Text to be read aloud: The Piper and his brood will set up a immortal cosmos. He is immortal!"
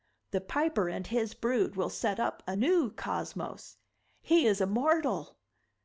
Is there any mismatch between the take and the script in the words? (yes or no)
yes